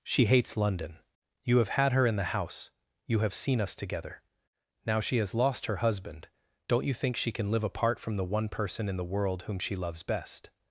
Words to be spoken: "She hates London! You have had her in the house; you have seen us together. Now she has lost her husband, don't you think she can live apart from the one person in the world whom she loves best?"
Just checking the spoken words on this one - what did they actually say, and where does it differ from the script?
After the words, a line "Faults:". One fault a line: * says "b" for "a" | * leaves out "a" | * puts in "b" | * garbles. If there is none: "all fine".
"She hates London! You have had her in the house; you have seen us together. Now she has lost her husband, don't you think she can live apart from the one person in the world whom she loves best?"
Faults:
all fine